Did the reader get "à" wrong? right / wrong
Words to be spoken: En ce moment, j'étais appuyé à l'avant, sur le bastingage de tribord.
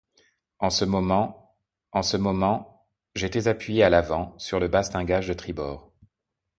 right